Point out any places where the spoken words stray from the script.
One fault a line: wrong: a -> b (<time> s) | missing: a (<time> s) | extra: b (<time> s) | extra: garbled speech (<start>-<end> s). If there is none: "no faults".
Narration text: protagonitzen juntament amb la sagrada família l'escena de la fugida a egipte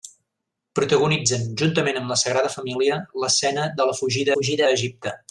extra: fugida (4.3 s)